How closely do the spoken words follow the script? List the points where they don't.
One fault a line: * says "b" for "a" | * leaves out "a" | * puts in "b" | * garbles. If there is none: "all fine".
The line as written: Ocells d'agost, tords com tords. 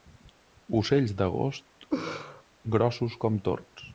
* says "grossos" for "tords"